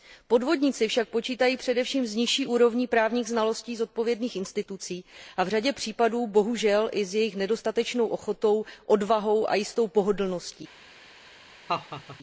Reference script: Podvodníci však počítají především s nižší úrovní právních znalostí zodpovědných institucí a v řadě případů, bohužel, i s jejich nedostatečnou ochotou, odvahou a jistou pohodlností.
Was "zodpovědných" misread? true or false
false